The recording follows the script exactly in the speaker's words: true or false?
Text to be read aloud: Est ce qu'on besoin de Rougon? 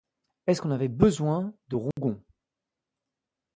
false